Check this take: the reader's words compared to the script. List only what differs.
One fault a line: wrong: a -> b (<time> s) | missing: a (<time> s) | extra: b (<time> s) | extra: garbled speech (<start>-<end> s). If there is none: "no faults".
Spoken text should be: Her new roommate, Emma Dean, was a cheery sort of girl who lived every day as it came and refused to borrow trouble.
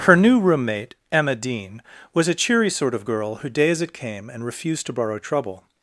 missing: lived every (3.5 s)